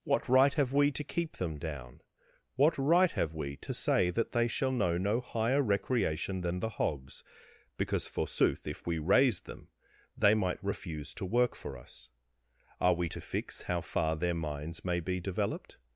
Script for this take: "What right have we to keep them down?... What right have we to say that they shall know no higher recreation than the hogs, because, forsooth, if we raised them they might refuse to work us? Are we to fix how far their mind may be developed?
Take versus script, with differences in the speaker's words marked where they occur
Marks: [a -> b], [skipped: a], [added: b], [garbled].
"What right have we to keep them down?... What right have we to say that they shall know no higher recreation than the hogs, because, forsooth, if we raised them they might refuse to work [added: for] us? Are we to fix how far their [mind -> minds] may be developed?